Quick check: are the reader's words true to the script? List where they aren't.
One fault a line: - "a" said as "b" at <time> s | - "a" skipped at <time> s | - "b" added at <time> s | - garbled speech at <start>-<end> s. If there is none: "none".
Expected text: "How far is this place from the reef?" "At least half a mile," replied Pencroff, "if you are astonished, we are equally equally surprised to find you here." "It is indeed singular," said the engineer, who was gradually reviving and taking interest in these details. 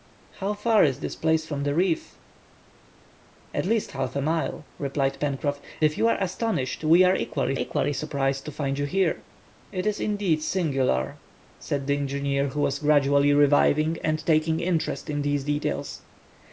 none